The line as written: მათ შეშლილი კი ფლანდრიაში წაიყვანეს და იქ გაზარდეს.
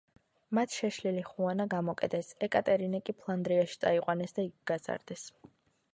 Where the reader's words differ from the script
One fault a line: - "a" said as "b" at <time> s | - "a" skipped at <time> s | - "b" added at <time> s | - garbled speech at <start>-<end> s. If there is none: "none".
- "ხუანა გამოკეტეს ეკატერინე" added at 1.3 s